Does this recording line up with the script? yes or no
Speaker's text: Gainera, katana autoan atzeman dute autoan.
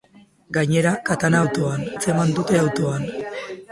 yes